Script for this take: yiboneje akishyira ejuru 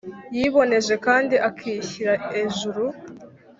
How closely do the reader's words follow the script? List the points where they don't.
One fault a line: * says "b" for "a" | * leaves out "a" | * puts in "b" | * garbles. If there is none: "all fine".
* puts in "kandi"